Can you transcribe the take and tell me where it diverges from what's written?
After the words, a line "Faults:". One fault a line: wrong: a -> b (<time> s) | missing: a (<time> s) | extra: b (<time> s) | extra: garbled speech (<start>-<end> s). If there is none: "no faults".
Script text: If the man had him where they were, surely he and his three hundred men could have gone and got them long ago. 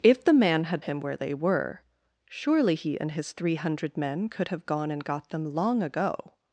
If the man had him where they were, surely he and his three hundred men could have gone and got them long ago.
Faults:
no faults